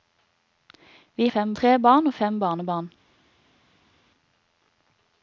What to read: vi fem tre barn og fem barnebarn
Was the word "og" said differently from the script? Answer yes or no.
no